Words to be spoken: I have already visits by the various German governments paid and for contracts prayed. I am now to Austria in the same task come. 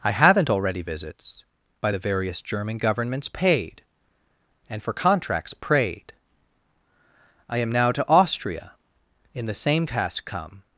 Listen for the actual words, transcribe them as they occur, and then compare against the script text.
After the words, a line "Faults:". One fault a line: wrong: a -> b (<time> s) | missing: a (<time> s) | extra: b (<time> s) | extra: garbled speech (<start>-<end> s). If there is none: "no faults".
I haven't already visits by the various German governments paid and for contracts prayed. I am now to Austria in the same task come.
Faults:
wrong: have -> haven't (0.1 s)